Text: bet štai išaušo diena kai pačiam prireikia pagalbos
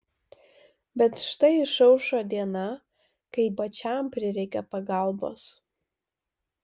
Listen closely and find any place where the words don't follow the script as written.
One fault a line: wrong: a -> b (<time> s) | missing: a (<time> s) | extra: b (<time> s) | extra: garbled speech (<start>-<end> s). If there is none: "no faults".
no faults